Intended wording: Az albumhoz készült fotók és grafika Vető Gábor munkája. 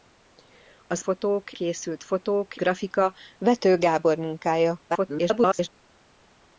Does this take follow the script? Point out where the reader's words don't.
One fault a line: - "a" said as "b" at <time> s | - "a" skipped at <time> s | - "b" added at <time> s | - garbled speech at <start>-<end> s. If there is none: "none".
- "albumhoz" said as "fotók" at 1.0 s
- "és" skipped at 2.6 s
- garbled speech at 4.9-5.7 s